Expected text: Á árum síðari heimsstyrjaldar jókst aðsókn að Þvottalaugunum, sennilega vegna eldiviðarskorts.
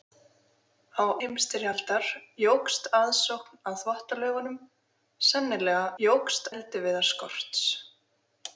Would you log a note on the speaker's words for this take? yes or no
yes